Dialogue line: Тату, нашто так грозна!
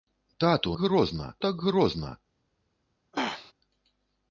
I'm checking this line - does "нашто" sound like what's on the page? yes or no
no